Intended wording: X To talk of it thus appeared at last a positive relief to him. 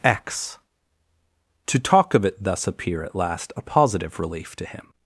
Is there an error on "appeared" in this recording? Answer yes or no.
yes